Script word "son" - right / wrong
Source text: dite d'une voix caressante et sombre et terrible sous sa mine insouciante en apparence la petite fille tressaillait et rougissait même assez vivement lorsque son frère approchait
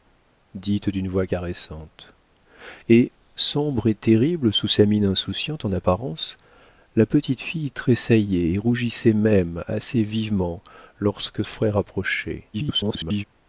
wrong